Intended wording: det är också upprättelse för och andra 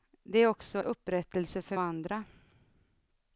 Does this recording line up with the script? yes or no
yes